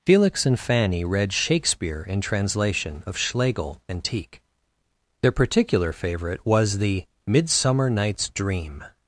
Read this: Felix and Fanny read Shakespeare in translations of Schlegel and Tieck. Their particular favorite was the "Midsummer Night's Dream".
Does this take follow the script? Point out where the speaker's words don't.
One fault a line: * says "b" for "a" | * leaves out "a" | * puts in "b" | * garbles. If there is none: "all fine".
* says "translation" for "translations"